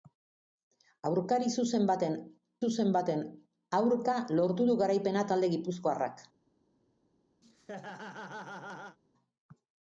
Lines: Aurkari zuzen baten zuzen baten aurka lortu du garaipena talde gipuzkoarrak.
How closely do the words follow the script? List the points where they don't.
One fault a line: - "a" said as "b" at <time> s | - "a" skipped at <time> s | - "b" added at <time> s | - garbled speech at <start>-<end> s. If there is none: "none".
none